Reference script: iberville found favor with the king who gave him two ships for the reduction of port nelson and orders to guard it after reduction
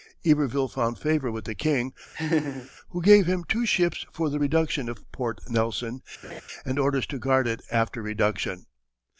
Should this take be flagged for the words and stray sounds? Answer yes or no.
yes